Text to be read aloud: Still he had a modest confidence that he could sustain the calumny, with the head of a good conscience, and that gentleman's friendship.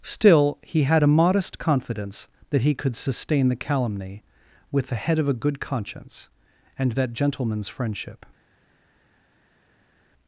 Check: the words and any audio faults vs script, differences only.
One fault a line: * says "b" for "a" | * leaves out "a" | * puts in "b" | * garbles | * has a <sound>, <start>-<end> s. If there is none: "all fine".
all fine